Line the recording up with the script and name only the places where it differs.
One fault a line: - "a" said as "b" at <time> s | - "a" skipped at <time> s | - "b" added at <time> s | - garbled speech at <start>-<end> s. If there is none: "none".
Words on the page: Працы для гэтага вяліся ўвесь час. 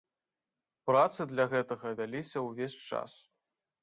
none